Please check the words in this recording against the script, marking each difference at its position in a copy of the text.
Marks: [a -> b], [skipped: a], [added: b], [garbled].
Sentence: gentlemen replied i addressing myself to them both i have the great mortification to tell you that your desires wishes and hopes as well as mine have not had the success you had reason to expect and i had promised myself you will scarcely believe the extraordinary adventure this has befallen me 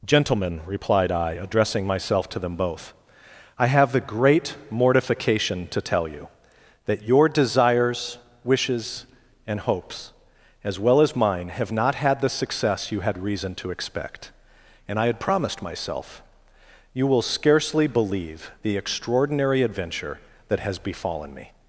gentlemen replied i addressing myself to them both i have the great mortification to tell you that your desires wishes and hopes as well as mine have not had the success you had reason to expect and i had promised myself you will scarcely believe the extraordinary adventure [this -> that] has befallen me